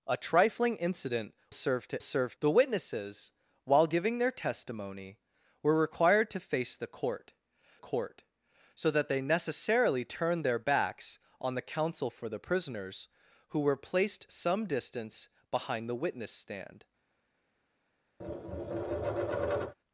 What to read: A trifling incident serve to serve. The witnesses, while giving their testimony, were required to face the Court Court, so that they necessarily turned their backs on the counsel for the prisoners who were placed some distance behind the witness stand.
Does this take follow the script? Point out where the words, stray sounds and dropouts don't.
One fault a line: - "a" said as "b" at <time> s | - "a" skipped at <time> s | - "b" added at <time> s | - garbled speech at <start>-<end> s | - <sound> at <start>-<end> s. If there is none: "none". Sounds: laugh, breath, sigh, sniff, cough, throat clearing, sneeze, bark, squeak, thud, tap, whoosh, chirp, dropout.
- tap at 18.2-19.7 s